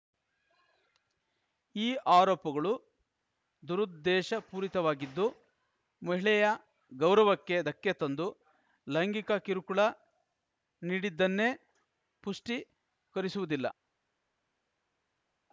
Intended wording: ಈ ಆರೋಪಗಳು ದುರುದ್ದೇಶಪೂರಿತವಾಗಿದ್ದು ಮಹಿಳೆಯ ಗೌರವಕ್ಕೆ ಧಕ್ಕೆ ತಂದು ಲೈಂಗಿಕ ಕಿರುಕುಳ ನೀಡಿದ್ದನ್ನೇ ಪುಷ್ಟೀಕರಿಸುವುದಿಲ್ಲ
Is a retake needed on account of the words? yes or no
no